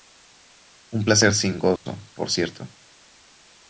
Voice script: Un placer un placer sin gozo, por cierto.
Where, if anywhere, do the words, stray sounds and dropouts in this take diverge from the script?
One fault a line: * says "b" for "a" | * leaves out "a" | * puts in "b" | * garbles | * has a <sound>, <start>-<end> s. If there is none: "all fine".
* leaves out "un placer"
* has a dropout, 1.8-1.9 s